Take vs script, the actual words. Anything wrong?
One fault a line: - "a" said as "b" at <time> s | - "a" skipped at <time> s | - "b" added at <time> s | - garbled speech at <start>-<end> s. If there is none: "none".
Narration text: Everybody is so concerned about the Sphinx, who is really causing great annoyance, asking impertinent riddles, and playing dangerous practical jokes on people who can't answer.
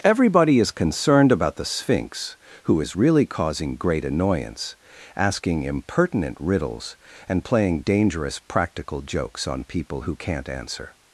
- "so" skipped at 0.7 s